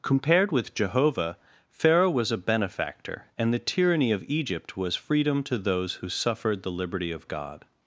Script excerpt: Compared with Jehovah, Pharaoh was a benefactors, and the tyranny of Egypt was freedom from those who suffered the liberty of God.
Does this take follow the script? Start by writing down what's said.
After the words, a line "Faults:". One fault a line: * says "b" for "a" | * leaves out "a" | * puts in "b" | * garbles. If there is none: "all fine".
Compared with Jehovah, Pharaoh was a benefactor, and the tyranny of Egypt was freedom to those who suffered the liberty of God.
Faults:
* says "benefactor" for "benefactors"
* says "to" for "from"